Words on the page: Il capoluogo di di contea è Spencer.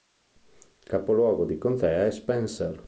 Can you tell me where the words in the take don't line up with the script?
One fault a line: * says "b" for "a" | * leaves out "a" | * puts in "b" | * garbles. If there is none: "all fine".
* leaves out "di"